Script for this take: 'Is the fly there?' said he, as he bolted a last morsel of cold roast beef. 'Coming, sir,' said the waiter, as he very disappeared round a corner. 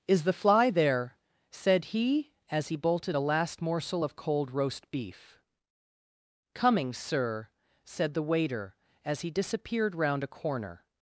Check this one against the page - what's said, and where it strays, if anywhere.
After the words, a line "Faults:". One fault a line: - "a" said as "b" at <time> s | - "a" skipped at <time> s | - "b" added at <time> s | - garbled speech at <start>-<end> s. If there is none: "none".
'Is the fly there?' said he, as he bolted a last morsel of cold roast beef. 'Coming, sir,' said the waiter, as he disappeared round a corner.
Faults:
- "very" skipped at 9.3 s